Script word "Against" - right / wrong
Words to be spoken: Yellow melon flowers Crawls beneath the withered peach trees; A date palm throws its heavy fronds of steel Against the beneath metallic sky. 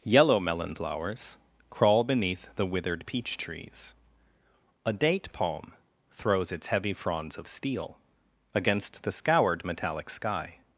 right